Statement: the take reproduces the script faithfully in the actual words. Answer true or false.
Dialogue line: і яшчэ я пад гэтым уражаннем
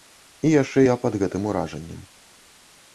true